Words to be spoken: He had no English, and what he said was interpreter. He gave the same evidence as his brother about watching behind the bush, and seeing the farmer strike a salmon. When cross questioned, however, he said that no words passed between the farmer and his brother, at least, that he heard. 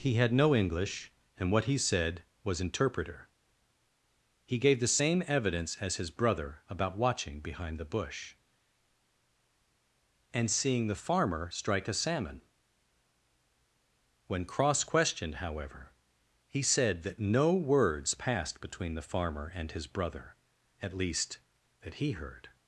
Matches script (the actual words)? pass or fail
pass